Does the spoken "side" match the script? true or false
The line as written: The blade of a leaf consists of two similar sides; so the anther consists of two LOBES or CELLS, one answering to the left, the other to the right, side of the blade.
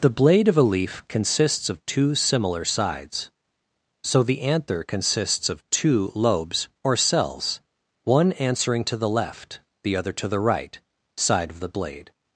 true